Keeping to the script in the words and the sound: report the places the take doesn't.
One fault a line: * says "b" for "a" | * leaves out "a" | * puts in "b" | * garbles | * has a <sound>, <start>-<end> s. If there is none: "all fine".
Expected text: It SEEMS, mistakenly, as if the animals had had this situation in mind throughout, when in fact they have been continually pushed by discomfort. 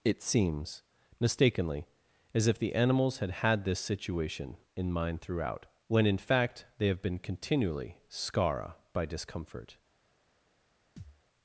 * says "scara" for "pushed"
* has a thud, 11.0-11.2 s